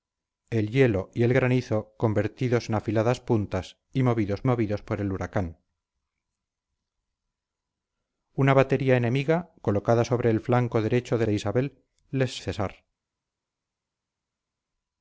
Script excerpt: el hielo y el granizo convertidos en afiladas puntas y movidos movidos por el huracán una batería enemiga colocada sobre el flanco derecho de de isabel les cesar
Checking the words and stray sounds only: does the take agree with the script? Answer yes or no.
yes